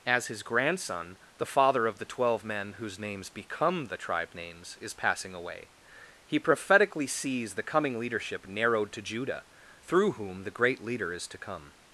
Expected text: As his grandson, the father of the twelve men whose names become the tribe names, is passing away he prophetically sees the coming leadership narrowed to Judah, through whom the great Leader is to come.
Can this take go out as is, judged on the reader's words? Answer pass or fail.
pass